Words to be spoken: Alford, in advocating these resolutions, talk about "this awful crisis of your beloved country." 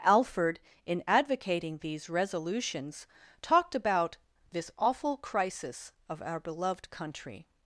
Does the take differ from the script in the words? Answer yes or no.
yes